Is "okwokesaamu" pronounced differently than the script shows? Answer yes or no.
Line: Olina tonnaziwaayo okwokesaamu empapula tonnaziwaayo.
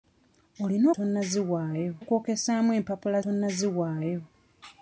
no